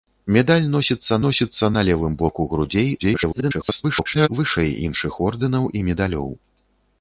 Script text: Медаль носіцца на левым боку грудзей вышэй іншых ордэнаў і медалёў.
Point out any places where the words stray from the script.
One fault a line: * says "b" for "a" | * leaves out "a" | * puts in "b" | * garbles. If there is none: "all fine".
* puts in "носіцца"
* garbles